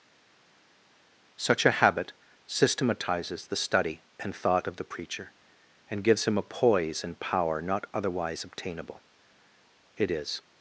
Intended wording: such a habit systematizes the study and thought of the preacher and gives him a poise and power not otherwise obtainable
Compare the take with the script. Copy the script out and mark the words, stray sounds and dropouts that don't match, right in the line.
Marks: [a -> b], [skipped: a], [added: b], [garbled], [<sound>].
such a habit systematizes the study and thought of the preacher and gives him a poise and power not otherwise obtainable [added: it is]